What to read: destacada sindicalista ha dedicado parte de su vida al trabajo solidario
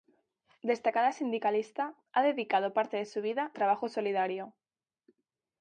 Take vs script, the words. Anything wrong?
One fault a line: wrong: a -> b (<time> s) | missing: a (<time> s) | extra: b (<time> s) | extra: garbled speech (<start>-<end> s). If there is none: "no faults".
missing: al (3.5 s)